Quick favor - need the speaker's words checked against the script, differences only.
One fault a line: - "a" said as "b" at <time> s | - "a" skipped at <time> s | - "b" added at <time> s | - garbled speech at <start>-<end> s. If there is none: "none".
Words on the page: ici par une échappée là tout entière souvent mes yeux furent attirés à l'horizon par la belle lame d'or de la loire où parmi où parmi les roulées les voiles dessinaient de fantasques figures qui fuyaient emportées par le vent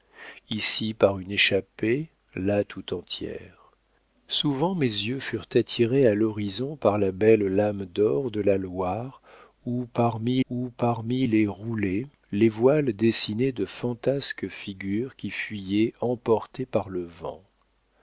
none